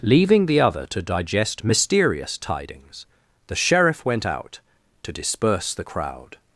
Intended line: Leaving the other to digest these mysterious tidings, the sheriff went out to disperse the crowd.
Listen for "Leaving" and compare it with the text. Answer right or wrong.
right